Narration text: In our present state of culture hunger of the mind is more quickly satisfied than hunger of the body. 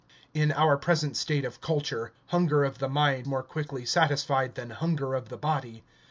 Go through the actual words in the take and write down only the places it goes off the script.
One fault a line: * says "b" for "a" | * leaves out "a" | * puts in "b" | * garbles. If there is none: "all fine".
* leaves out "is"